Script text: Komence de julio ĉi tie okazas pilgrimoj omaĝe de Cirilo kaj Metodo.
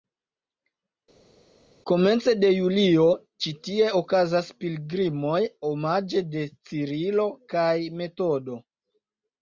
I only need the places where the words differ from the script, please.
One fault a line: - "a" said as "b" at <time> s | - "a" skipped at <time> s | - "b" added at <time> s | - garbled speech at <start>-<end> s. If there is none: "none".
none